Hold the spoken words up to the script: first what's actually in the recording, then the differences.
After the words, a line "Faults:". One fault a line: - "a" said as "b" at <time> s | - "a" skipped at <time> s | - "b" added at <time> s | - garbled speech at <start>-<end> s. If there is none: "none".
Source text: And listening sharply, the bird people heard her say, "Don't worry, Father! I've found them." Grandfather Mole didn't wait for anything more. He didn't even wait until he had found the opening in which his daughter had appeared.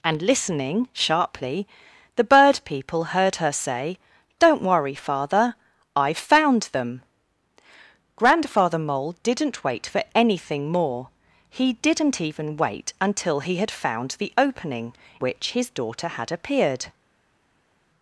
And listening sharply, the bird people heard her say, "Don't worry, Father! I've found them." Grandfather Mole didn't wait for anything more. He didn't even wait until he had found the opening which his daughter had appeared.
Faults:
- "in" skipped at 14.9 s